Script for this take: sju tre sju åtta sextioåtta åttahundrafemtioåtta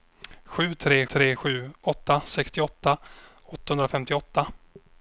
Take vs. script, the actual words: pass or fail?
fail